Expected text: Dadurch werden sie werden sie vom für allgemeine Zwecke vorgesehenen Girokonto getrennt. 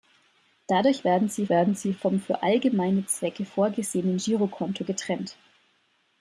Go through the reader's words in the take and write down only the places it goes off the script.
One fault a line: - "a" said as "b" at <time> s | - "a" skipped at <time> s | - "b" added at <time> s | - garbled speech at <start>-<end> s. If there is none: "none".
none